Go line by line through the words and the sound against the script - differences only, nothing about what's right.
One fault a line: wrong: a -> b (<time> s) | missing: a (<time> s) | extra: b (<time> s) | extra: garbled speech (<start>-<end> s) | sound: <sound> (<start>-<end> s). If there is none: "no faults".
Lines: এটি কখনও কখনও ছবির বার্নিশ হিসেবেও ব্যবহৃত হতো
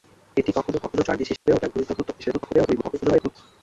missing: ছবির (1.1 s)
sound: dropout (1.4-1.5 s)
extra: garbled speech (2.2-3.4 s)